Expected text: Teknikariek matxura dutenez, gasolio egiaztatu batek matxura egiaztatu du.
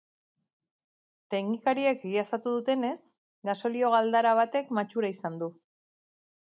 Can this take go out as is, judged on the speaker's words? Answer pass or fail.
fail